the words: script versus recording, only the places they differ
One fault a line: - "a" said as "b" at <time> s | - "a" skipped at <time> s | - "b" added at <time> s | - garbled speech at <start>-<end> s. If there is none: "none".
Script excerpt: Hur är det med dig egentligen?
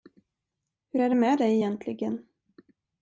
none